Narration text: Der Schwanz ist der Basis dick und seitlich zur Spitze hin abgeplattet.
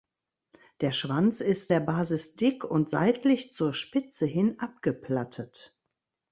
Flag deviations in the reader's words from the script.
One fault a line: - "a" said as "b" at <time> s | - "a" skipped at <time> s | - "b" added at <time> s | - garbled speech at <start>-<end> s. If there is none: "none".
none